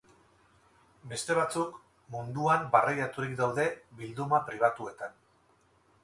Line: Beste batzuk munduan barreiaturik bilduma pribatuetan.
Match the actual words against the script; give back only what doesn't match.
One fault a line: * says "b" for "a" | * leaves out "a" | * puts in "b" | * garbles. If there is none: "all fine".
* puts in "daude"